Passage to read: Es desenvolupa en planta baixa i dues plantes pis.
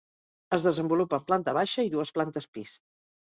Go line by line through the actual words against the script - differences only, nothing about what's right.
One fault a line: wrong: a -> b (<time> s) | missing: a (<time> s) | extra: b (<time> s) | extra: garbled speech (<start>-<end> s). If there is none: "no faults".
no faults